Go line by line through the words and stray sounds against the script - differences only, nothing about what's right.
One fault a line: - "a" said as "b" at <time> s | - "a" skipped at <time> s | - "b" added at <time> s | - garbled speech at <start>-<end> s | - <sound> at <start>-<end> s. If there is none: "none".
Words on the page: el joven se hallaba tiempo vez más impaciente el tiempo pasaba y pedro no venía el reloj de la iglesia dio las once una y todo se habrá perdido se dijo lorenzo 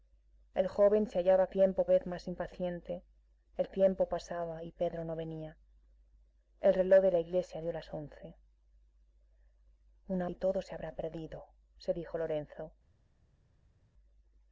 none